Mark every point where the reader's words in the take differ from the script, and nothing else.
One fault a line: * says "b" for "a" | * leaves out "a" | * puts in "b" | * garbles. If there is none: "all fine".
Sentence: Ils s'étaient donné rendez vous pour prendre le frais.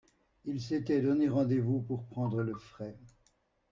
all fine